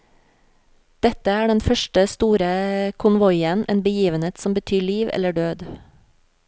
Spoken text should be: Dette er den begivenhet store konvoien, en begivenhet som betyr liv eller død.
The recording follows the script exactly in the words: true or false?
false